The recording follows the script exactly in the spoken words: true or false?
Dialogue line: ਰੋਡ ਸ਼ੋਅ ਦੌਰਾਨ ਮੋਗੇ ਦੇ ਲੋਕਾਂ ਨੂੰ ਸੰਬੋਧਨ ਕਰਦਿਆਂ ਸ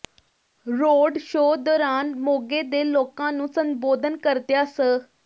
true